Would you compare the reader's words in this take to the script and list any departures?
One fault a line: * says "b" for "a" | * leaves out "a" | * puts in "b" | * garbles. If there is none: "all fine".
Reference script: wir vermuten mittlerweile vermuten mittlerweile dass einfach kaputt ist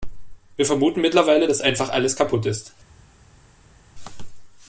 * leaves out "vermuten mittlerweile"
* puts in "alles"